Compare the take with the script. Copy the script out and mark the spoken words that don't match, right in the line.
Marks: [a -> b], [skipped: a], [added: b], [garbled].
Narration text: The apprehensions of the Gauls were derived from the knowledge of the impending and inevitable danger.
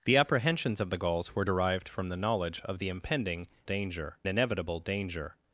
The apprehensions of the Gauls were derived from the knowledge of the impending [and -> danger] inevitable danger.